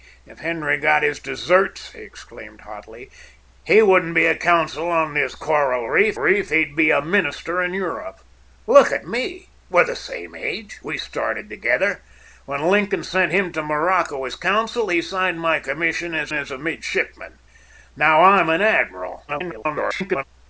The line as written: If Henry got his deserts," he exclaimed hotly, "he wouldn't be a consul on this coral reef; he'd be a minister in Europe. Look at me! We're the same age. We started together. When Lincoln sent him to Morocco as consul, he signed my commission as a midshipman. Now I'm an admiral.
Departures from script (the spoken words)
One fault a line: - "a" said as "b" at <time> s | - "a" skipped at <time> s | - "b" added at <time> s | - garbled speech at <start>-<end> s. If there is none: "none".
- "reef" added at 6.2 s
- "as" added at 16.3 s
- garbled speech at 19.3-20.2 s